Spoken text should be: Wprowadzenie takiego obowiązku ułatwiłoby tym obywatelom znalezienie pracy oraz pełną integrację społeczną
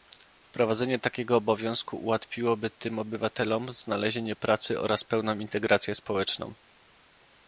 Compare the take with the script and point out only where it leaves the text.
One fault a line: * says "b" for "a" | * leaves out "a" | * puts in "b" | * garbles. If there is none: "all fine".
all fine